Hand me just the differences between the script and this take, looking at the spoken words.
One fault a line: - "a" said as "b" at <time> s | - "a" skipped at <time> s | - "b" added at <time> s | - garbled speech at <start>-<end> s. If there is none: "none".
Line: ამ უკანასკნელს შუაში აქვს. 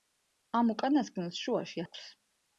none